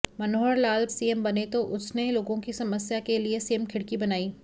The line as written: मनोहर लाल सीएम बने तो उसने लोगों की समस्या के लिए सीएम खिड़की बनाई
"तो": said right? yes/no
yes